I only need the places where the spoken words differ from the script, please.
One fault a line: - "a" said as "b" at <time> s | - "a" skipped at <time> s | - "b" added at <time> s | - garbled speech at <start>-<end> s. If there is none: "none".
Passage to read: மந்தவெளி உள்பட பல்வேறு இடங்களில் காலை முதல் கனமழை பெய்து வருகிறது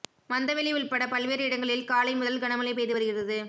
none